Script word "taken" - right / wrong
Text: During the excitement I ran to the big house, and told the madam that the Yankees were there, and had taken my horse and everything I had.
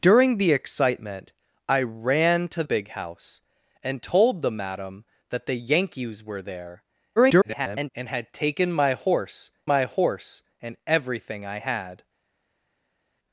right